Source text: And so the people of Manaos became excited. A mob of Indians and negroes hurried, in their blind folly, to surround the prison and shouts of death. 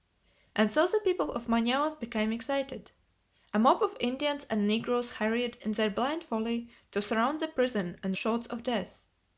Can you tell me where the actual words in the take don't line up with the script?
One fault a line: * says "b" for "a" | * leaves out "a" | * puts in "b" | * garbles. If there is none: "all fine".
all fine